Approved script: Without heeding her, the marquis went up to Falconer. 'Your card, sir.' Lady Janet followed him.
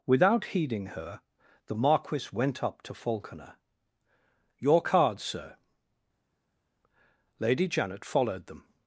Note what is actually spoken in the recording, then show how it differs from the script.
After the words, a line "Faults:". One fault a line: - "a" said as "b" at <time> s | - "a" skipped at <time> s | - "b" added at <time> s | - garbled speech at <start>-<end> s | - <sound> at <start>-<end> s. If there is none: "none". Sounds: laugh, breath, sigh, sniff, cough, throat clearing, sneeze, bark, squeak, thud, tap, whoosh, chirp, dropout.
Without heeding her, the marquis went up to Falconer. 'Your card, sir.' Lady Janet followed them.
Faults:
- "him" said as "them" at 8.5 s